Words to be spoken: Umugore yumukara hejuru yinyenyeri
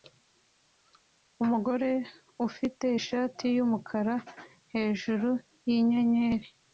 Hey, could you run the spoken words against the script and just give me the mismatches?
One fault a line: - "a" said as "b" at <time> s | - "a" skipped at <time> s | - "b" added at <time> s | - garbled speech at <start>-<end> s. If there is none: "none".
- "ufite ishati" added at 2.5 s